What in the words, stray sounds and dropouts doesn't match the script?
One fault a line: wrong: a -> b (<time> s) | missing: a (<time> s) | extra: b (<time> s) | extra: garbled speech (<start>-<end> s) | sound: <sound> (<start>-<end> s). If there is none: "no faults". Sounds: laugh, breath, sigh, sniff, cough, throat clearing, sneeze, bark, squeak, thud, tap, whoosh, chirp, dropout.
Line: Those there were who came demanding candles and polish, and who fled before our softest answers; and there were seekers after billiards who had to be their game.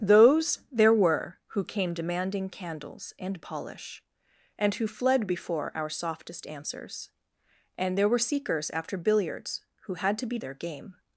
no faults